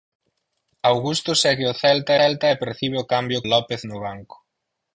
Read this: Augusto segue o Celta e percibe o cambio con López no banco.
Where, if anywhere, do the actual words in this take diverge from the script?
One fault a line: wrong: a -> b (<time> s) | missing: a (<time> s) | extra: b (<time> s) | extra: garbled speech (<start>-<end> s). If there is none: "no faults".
extra: Celta (2.2 s)
missing: con (3.4 s)